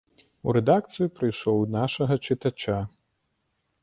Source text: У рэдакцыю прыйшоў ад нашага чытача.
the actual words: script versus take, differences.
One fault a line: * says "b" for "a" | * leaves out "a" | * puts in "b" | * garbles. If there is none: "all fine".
all fine